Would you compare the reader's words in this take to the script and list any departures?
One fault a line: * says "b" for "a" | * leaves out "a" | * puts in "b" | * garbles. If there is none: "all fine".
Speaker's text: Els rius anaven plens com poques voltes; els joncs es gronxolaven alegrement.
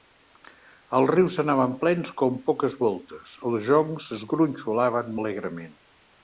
all fine